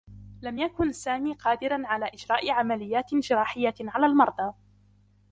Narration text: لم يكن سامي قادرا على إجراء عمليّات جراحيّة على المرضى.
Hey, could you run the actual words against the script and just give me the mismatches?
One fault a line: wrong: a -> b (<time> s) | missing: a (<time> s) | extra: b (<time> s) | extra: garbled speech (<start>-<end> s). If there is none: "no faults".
no faults